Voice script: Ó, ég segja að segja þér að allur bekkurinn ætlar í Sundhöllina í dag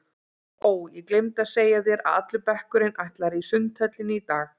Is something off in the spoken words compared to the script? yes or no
yes